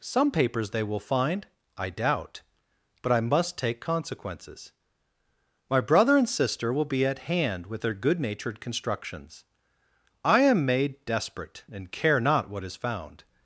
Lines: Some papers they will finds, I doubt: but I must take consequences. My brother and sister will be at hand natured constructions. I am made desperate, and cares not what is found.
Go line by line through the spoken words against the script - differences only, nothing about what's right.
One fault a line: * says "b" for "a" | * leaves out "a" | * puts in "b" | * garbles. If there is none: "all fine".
* says "find" for "finds"
* puts in "with their good"
* says "care" for "cares"